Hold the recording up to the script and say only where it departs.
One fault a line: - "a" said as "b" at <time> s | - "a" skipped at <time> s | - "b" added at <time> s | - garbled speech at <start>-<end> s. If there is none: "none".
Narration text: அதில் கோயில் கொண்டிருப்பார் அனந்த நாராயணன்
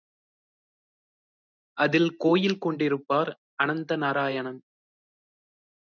none